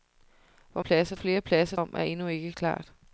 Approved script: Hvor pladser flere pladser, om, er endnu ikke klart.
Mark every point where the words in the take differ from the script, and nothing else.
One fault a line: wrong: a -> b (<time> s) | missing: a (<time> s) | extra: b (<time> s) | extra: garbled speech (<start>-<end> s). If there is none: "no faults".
no faults